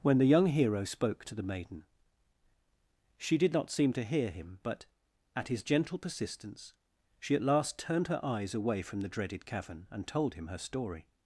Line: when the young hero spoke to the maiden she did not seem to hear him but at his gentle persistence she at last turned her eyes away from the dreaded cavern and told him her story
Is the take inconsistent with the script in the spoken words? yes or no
no